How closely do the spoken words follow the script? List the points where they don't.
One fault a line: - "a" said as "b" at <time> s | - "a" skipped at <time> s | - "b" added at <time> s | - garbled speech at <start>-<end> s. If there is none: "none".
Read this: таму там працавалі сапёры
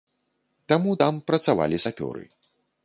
none